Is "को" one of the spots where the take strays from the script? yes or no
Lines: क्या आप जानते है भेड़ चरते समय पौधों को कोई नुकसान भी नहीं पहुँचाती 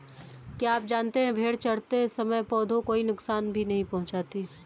yes